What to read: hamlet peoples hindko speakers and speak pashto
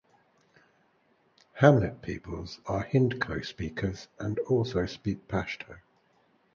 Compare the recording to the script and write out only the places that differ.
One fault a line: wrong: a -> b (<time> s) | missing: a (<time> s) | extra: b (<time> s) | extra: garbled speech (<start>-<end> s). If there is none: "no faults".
extra: are (2.7 s)
extra: also (4.5 s)